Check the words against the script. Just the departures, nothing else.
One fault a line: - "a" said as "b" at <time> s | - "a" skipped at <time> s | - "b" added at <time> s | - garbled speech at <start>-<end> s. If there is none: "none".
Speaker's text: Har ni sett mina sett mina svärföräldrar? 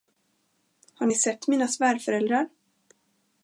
- "sett mina" skipped at 1.7 s